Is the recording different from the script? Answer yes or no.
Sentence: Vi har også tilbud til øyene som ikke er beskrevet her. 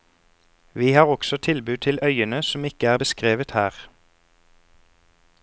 no